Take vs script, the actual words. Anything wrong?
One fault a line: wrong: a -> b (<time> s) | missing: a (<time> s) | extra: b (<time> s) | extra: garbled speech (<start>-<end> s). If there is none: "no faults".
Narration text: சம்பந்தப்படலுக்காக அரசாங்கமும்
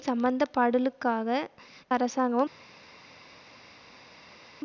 no faults